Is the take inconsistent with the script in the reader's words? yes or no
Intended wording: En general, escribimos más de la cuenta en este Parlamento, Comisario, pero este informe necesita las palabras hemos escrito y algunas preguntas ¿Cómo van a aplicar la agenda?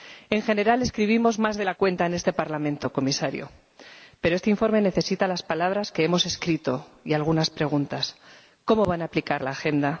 yes